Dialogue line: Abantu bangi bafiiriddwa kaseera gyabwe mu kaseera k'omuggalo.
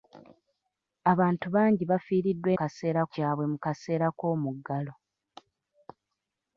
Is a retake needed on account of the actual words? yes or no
no